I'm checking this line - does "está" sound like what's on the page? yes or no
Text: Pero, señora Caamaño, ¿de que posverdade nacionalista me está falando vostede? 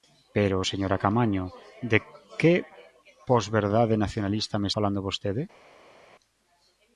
no